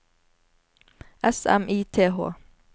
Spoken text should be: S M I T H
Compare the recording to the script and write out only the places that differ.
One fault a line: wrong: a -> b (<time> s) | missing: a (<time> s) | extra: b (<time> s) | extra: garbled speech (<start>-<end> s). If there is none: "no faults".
no faults